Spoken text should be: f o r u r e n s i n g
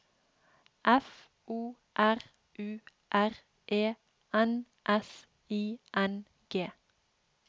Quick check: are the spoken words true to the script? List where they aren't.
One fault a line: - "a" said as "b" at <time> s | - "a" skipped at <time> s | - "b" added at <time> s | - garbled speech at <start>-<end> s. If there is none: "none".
none